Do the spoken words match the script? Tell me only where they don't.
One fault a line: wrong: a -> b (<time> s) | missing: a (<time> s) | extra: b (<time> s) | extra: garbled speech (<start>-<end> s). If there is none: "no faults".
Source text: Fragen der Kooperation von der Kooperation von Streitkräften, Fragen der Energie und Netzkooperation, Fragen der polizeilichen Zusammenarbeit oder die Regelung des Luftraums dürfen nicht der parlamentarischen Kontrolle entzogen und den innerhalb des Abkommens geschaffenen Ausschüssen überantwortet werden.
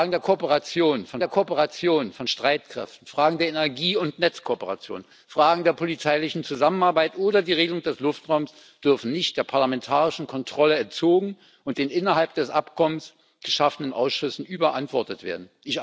no faults